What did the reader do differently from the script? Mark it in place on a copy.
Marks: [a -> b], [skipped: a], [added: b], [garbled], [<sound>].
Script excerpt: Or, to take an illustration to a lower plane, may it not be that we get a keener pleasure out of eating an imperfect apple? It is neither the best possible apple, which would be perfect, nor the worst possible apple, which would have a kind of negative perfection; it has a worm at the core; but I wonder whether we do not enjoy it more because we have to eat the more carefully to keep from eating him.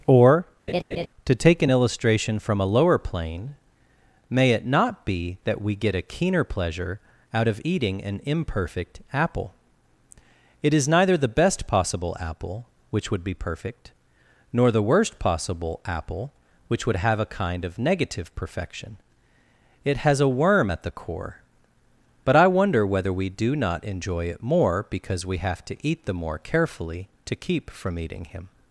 Or, [laugh] to take an illustration [to -> from] a lower plane, may it not be that we get a keener pleasure out of eating an imperfect apple? It is neither the best possible apple, which would be perfect, nor the worst possible apple, which would have a kind of negative perfection; it has a worm at the core; but I wonder whether we do not enjoy it more because we have to eat the more carefully to keep from eating him.